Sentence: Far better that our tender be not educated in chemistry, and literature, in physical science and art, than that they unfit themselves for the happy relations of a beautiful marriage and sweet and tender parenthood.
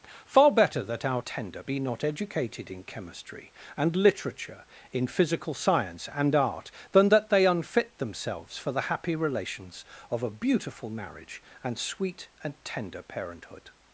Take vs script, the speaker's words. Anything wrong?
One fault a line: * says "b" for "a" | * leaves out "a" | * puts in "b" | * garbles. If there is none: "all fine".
all fine